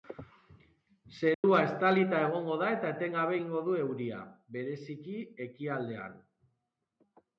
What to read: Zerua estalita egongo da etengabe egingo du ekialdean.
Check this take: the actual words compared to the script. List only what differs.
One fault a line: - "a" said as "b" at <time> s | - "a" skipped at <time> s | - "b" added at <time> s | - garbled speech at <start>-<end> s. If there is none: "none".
- "eta" added at 2.8 s
- "euria bereziki" added at 3.8 s